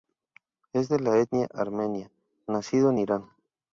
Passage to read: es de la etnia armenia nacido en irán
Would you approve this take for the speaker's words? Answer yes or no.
yes